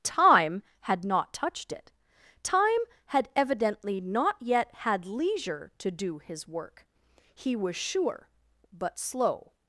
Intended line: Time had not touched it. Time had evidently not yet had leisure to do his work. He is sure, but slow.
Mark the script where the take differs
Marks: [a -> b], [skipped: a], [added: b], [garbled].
Time had not touched it. Time had evidently not yet had leisure to do his work. He [is -> was] sure, but slow.